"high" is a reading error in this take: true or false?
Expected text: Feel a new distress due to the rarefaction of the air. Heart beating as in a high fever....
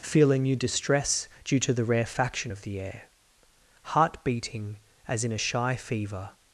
true